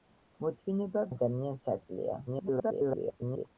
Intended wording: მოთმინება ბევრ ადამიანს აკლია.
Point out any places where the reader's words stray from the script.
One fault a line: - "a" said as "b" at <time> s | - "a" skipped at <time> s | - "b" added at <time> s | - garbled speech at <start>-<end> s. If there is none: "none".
- "ბევრ" skipped at 1.0 s
- garbled speech at 2.3-3.5 s